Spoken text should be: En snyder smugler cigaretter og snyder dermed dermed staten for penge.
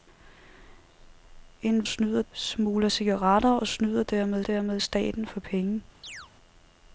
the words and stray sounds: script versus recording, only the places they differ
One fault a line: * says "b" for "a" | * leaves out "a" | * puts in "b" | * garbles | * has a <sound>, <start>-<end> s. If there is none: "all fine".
* has a chirp, 6.0-6.3 s